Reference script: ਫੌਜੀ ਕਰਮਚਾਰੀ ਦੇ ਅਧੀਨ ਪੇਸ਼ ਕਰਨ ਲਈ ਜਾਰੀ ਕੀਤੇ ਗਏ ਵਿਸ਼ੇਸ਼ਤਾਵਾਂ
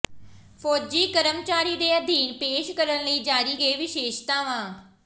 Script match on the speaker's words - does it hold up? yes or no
no